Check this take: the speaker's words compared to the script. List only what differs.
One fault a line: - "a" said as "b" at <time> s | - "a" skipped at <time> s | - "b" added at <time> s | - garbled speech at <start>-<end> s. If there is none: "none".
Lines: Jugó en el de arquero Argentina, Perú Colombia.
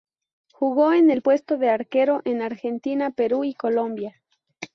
- "puesto" added at 1.2 s
- "en" added at 2.2 s
- "y" added at 3.4 s